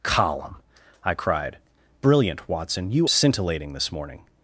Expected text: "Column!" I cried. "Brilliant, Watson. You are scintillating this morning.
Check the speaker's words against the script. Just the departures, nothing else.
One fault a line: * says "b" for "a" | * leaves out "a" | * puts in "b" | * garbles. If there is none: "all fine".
* leaves out "are"